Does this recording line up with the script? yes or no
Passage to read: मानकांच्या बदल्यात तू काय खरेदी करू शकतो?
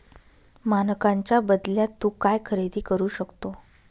yes